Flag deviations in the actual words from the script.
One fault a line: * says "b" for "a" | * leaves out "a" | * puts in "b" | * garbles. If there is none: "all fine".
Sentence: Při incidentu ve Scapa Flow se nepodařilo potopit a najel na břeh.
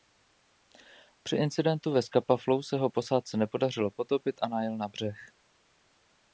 * puts in "ho posádce"